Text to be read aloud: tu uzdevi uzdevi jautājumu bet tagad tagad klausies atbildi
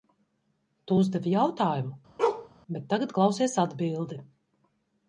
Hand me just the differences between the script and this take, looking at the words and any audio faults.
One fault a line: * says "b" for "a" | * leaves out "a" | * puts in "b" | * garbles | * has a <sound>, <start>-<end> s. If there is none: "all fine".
* leaves out "uzdevi"
* has a bark, 2.2-2.5 s
* leaves out "tagad"